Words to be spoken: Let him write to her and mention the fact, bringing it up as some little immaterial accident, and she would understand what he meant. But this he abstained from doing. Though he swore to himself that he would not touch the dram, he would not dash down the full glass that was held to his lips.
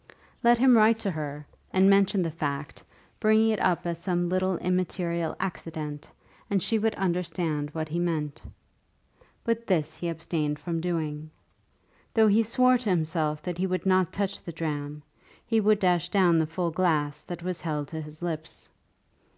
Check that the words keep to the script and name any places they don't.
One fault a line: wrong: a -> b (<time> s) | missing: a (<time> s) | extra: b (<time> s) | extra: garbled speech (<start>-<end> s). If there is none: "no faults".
missing: not (15.8 s)